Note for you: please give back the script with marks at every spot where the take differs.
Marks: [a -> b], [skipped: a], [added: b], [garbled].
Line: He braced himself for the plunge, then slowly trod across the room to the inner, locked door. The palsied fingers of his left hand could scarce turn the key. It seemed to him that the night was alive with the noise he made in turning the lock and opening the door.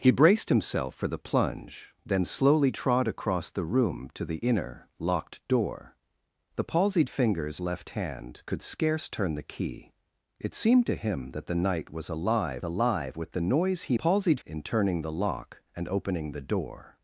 He braced himself for the plunge, then slowly trod across the room to the inner, locked door. The palsied fingers [skipped: of his] left hand could scarce turn the key. It seemed to him that the night was alive [added: alive] with the noise he [made -> palsied] in turning the lock and opening the door.